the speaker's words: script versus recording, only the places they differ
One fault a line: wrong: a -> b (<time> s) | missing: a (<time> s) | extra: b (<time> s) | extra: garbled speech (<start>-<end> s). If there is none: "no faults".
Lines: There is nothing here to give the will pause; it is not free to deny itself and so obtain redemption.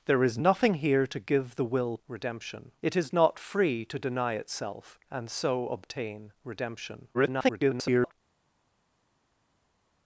wrong: pause -> redemption (2.1 s)
extra: garbled speech (7.1-8.1 s)